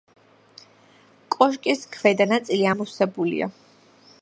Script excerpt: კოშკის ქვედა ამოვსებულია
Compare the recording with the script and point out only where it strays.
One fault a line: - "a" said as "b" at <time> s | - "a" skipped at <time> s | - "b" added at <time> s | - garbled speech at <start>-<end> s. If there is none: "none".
- "ნაწილი" added at 2.3 s